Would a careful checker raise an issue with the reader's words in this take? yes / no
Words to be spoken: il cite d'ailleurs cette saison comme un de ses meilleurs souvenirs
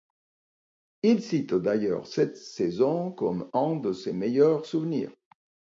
no